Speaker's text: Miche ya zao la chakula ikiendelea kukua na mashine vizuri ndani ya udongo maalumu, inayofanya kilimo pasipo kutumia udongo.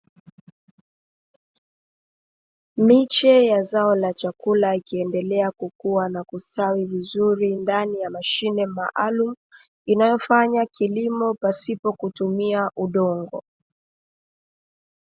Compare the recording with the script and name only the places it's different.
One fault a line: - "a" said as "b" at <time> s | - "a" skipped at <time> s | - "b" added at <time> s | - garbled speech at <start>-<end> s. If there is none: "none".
- "mashine" said as "kustawi" at 6.2 s
- "udongo" said as "mashine" at 8.1 s